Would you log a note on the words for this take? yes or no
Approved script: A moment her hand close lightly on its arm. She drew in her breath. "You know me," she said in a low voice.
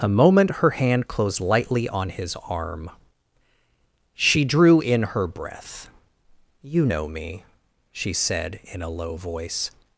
yes